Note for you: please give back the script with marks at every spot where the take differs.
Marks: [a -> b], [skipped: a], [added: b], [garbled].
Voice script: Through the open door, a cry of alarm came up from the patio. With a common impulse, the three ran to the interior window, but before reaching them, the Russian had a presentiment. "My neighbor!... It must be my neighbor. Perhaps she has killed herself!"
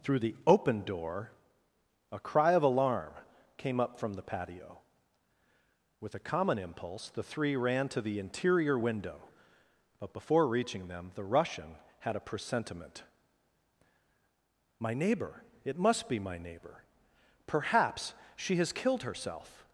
Through the open door, a cry of alarm came up from the patio. With a common impulse, the three ran to the interior window, but before reaching them, the Russian had a presentiment. "My neighbor!... It must be my neighbor. Perhaps she has killed herself!"